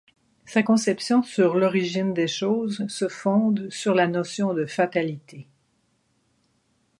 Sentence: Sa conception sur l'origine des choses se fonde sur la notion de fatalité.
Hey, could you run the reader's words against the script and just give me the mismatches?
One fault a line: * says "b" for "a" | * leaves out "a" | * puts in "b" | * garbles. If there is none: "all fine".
all fine